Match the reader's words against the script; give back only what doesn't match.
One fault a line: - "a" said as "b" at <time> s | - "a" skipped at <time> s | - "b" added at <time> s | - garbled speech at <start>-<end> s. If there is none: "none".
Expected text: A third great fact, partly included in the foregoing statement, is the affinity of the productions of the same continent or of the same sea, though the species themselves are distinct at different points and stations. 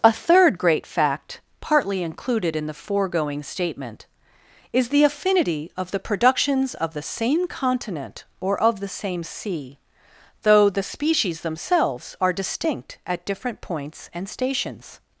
none